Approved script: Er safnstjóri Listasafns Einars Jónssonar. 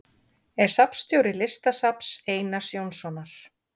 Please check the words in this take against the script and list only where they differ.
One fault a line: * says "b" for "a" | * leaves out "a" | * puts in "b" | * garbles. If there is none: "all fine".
all fine